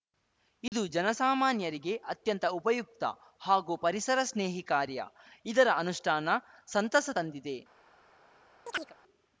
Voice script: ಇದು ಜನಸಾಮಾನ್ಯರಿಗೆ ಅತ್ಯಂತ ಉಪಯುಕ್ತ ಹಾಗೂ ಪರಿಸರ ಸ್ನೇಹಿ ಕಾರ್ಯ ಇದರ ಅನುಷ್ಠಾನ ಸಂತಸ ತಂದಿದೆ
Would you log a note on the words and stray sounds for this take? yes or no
yes